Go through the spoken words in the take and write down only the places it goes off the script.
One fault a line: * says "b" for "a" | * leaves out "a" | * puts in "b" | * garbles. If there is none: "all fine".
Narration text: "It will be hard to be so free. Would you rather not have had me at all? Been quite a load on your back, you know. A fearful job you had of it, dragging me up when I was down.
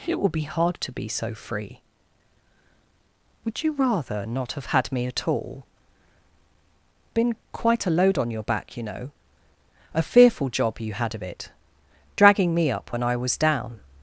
all fine